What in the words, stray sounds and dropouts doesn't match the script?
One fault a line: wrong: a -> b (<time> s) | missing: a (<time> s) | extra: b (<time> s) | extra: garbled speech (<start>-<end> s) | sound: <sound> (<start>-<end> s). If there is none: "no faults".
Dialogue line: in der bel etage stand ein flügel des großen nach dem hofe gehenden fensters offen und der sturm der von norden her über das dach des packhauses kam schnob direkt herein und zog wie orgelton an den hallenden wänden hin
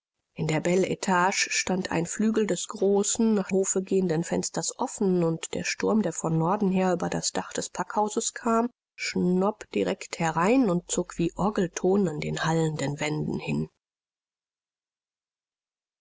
missing: dem (3.5 s)